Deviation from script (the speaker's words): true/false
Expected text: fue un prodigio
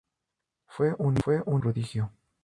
false